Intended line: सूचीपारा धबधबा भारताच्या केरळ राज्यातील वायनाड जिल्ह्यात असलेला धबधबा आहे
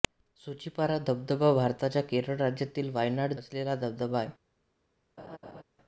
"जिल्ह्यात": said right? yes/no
no